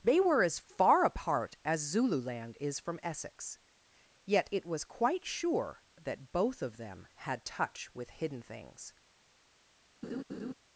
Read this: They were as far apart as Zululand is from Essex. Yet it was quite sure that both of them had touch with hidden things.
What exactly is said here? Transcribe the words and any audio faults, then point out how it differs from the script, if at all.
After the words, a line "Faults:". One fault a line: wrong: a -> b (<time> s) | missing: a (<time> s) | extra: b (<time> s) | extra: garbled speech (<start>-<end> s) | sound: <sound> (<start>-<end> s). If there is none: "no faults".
They were as far apart as Zululand is from Essex. Yet it was quite sure that both of them had touch with hidden things.
Faults:
sound: laugh (10.0-10.5 s)